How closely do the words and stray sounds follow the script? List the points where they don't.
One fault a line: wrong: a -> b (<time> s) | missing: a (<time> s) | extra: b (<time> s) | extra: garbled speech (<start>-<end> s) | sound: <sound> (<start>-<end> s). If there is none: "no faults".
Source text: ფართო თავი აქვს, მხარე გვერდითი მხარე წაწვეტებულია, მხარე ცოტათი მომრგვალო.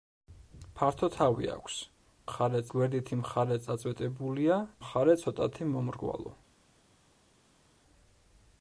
no faults